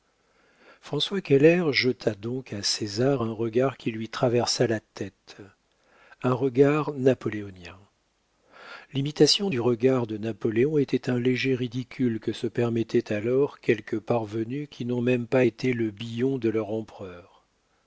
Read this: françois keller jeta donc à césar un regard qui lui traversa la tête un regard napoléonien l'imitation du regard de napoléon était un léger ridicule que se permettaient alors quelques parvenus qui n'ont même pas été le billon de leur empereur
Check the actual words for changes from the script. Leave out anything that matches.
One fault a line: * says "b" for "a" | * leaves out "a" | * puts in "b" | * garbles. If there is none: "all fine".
all fine